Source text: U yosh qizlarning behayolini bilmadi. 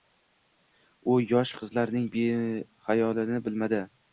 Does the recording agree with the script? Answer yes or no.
yes